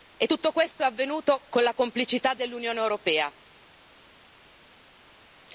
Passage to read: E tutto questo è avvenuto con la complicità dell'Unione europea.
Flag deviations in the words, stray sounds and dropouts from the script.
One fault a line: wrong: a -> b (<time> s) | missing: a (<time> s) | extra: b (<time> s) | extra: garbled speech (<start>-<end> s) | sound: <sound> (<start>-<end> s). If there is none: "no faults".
no faults